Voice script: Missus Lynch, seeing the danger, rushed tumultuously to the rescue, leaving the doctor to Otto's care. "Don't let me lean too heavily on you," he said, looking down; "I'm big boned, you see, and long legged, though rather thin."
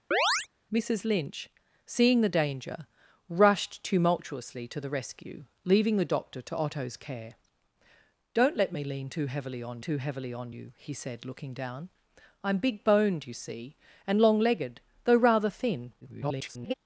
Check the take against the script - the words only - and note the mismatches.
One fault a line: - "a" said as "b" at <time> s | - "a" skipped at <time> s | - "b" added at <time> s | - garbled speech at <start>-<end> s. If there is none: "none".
- "too heavily on" added at 9.8 s
- garbled speech at 16.0-16.7 s